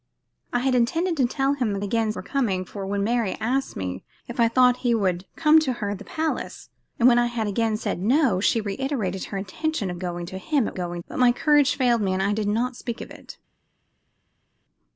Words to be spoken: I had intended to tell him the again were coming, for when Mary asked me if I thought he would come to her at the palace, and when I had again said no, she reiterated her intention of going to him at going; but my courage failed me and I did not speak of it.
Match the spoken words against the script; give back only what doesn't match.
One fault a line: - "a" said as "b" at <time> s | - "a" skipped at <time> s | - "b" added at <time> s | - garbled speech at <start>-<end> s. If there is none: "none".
none